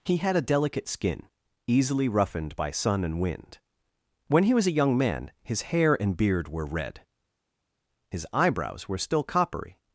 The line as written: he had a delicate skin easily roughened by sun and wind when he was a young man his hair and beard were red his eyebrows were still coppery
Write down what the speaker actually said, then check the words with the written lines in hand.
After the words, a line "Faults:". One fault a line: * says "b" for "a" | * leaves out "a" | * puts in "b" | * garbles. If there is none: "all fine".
he had a delicate skin easily roughened by sun and wind when he was a young man his hair and beard were red his eyebrows were still coppery
Faults:
all fine